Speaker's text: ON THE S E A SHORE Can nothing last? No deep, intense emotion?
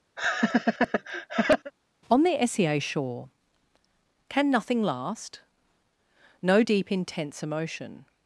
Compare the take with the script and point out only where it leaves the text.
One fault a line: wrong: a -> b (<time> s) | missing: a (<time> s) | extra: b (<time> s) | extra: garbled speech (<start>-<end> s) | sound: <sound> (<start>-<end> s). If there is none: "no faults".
sound: laugh (0.2-1.7 s)